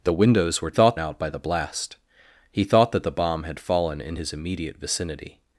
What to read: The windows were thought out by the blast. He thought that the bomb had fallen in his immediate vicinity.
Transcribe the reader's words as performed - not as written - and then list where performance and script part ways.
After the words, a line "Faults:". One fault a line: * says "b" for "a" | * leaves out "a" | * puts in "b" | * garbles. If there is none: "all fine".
The windows were thought out by the blast. He thought that the bomb had fallen in his immediate vicinity.
Faults:
all fine